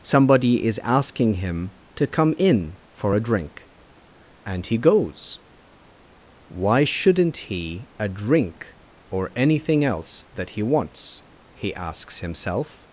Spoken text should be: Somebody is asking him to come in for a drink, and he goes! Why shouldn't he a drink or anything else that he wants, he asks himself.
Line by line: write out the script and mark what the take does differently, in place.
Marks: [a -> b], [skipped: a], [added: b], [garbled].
Somebody is asking him to come in for a drink, and he goes! Why shouldn't he a drink or anything else that he wants, he asks himself.